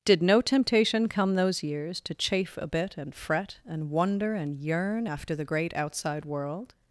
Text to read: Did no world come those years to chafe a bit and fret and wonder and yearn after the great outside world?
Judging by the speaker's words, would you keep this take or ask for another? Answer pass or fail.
fail